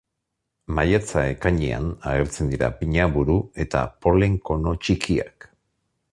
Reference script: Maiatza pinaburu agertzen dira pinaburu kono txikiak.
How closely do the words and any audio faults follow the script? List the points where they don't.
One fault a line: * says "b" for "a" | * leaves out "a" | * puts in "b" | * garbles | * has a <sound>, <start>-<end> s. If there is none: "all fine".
* says "ekainean" for "pinaburu"
* puts in "eta polen"